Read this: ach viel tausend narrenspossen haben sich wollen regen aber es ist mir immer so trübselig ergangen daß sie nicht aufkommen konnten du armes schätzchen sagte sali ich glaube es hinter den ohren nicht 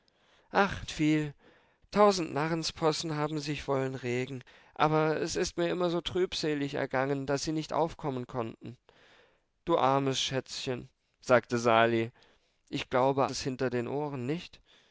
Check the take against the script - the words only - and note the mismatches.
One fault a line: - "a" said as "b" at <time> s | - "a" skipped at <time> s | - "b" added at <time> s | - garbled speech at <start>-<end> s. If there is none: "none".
none